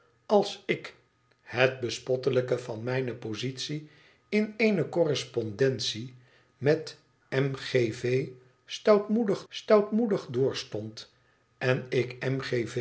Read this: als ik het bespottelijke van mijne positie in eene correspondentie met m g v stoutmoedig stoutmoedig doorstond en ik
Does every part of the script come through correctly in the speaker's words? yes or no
yes